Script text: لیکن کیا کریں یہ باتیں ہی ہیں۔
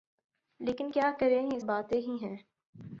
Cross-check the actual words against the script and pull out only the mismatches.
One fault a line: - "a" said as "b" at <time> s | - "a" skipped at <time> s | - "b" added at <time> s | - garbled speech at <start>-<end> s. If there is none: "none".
none